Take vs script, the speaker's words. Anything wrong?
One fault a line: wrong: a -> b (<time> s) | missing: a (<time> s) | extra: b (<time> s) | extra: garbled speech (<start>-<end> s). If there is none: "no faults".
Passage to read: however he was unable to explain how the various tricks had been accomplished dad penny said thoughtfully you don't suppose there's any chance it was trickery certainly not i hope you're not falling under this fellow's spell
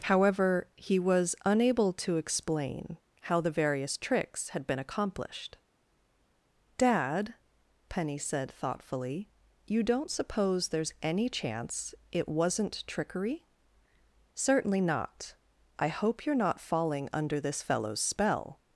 wrong: was -> wasn't (12.3 s)